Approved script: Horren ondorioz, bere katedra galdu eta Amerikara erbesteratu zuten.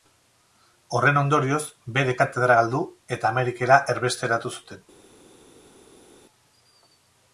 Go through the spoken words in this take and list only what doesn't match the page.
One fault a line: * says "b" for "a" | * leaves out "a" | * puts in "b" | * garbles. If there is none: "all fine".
all fine